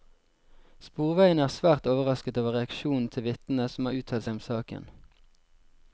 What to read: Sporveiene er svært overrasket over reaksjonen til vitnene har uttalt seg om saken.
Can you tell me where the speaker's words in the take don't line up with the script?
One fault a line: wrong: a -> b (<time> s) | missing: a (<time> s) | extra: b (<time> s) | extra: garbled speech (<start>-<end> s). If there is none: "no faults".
extra: som (3.8 s)